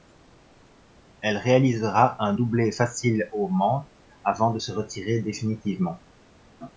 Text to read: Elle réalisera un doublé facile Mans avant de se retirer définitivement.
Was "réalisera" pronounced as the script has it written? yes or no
yes